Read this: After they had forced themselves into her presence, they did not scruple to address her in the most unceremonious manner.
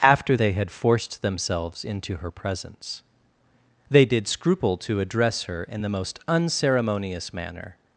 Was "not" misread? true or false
true